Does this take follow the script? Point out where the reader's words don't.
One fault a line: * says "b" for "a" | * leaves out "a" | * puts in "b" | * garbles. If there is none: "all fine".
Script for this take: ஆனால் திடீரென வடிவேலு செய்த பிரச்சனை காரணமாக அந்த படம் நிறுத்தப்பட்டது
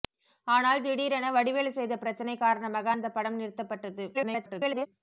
* garbles